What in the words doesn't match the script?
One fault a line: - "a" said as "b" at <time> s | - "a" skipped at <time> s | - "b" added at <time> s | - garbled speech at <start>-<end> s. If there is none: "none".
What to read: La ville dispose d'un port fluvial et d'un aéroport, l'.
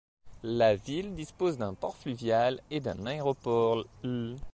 none